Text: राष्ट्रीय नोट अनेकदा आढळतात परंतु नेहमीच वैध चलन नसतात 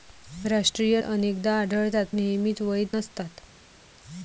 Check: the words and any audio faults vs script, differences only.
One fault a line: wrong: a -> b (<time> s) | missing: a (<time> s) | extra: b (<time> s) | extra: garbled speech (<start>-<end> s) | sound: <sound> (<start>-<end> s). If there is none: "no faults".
missing: नोट (1.0 s)
missing: परंतु (2.1 s)
missing: चलन (2.9 s)